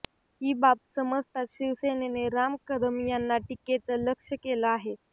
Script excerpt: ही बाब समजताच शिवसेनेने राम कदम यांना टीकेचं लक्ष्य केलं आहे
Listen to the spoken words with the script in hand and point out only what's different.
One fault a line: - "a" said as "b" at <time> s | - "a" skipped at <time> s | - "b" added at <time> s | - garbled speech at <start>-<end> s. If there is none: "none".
none